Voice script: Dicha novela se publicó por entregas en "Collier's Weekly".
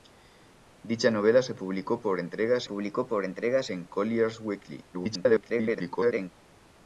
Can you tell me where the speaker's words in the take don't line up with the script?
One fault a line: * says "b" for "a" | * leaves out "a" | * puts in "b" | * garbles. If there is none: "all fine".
* puts in "publicó por entregas"
* garbles